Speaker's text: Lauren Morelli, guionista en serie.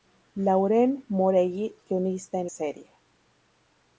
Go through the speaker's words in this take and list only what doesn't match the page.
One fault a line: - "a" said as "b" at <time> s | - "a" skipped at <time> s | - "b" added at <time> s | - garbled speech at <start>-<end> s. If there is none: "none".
none